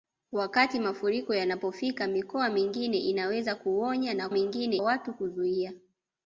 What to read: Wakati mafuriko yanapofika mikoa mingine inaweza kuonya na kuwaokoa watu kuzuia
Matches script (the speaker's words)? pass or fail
fail